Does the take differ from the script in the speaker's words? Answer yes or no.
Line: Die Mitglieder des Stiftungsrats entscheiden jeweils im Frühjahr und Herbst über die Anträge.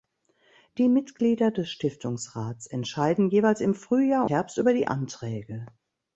yes